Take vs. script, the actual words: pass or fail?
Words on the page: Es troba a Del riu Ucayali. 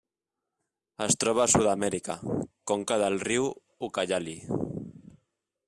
fail